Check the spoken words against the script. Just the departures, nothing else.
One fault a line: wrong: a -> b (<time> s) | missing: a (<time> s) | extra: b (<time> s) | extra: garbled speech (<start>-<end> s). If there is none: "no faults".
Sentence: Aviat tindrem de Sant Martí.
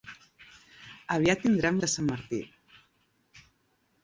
no faults